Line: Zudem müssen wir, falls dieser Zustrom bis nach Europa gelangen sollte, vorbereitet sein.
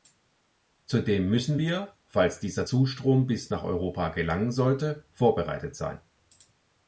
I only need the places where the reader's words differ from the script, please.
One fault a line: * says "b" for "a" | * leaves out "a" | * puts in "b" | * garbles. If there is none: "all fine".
all fine